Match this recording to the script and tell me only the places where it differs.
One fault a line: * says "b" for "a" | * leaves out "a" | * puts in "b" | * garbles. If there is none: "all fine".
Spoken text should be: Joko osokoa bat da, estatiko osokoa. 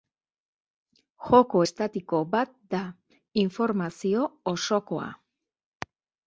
* says "estatiko" for "osokoa"
* says "informazio" for "estatiko"